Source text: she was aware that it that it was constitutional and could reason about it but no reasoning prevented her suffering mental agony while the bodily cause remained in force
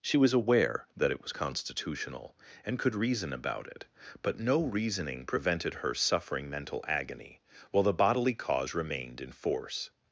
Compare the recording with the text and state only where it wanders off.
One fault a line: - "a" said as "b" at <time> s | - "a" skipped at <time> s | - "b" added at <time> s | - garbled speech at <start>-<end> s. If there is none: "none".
- "that it" skipped at 1.2 s